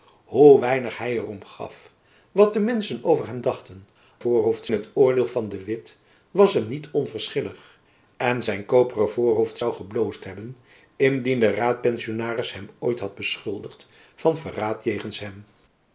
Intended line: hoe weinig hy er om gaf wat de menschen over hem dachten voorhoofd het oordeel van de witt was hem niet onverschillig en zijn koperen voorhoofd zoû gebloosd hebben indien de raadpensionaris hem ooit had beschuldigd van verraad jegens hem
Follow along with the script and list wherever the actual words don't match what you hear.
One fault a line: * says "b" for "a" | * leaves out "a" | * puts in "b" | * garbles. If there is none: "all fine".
all fine